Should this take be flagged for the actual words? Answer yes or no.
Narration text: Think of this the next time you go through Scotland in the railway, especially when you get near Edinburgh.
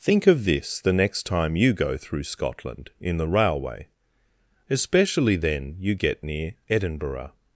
yes